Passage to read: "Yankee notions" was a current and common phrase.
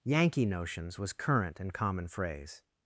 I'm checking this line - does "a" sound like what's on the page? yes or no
no